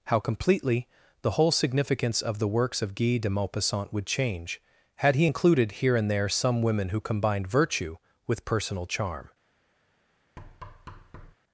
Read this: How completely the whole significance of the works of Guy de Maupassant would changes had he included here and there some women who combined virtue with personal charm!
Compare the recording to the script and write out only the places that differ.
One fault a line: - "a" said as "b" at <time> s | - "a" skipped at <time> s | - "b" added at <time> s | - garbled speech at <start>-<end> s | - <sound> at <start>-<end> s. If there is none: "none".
- "changes" said as "change" at 4.1 s
- thud at 10.4-11.3 s